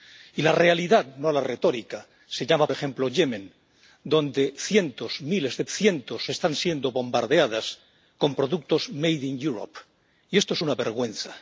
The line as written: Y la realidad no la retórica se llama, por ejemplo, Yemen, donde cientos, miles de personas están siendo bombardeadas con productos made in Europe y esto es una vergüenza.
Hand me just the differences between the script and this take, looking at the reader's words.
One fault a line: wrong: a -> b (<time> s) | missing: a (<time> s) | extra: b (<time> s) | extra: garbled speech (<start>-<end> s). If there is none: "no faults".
missing: por (2.7 s)
wrong: personas -> cientos (5.7 s)